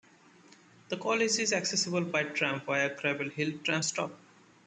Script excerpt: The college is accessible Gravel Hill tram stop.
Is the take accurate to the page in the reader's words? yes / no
no